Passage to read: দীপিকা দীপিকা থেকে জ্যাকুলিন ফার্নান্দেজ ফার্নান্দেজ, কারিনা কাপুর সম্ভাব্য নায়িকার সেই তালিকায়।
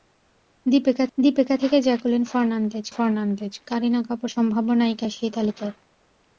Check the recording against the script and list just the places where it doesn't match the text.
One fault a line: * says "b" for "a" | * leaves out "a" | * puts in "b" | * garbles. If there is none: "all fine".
all fine